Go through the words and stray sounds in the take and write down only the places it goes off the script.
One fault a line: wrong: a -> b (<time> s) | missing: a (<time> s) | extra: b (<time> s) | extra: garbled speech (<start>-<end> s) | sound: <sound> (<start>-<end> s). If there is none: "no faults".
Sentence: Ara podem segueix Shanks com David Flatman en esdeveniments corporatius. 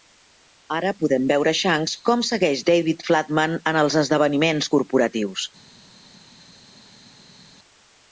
wrong: segueix -> veure (1.3 s)
extra: segueix (2.3 s)
extra: els (3.8 s)